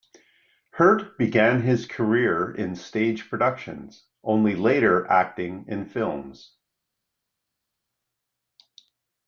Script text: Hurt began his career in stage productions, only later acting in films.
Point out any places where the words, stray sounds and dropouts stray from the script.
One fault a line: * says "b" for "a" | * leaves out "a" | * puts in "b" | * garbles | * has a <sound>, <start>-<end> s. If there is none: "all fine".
all fine